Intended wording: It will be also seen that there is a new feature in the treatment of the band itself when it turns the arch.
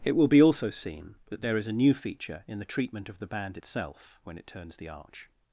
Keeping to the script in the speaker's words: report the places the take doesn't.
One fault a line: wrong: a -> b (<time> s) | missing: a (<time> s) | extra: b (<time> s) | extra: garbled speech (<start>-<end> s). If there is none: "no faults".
no faults